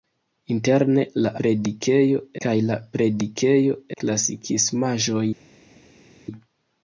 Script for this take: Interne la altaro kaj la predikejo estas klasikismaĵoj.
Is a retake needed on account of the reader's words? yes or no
yes